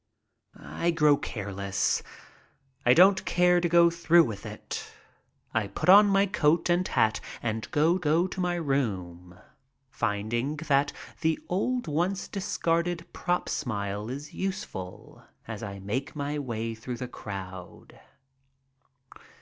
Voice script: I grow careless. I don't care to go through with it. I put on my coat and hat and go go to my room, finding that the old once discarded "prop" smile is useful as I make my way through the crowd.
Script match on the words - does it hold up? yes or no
yes